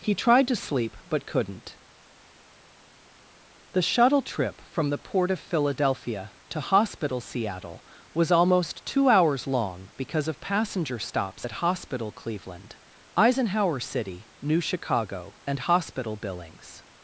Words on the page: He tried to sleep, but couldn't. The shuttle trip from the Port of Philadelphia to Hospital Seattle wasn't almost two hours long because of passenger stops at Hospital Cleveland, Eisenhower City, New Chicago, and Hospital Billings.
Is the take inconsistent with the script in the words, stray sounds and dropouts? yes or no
yes